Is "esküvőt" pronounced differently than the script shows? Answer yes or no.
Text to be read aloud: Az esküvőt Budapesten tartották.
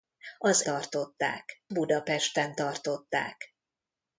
yes